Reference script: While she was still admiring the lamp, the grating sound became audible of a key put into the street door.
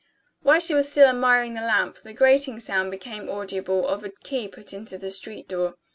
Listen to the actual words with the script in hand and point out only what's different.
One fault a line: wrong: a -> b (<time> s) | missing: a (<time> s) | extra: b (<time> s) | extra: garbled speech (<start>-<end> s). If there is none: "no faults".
no faults